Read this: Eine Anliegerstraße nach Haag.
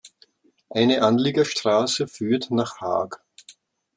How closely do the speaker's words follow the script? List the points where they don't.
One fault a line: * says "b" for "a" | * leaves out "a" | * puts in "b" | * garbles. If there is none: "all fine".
* puts in "führt"